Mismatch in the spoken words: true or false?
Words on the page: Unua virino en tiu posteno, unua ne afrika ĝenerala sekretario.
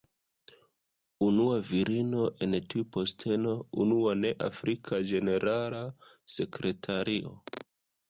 false